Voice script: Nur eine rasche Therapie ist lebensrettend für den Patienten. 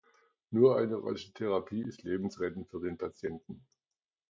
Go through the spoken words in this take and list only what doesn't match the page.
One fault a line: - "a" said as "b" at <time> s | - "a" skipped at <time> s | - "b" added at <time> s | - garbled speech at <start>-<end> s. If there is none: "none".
none